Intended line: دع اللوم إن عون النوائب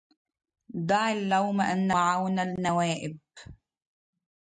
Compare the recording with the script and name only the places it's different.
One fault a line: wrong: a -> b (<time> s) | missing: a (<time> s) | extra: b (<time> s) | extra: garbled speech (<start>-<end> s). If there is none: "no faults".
no faults